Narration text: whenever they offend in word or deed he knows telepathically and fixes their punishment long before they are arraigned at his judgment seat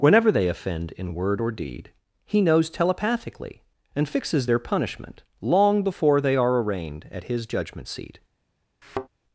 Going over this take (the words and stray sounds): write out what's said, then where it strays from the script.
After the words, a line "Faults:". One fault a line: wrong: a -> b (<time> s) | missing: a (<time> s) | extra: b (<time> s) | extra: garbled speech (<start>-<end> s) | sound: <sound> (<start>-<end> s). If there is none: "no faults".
whenever they offend in word or deed he knows telepathically and fixes their punishment long before they are arraigned at his judgment seat
Faults:
sound: thud (8.8-9.1 s)